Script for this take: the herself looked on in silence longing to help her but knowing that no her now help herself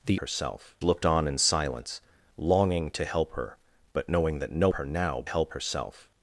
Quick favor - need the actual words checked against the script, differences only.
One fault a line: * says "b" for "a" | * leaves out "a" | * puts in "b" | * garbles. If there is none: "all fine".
all fine